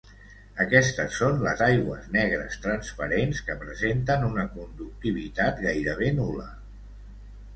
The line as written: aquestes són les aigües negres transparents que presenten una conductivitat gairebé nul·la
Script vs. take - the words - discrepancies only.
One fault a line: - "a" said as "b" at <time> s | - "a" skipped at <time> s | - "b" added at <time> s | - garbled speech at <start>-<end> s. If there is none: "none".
none